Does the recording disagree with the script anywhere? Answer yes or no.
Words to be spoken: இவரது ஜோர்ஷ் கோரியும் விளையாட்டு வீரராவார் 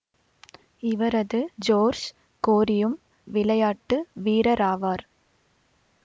no